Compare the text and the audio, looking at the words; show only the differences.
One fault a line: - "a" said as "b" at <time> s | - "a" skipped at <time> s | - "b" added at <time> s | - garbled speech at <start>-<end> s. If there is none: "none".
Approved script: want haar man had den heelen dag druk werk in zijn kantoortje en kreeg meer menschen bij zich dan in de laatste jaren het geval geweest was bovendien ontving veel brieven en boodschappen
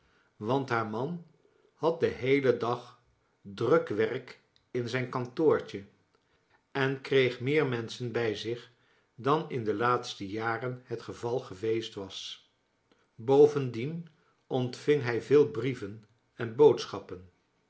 - "hij" added at 15.0 s